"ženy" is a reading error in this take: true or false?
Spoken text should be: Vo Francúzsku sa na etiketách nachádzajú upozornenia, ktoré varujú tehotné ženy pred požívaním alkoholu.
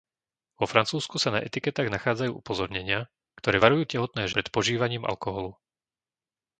true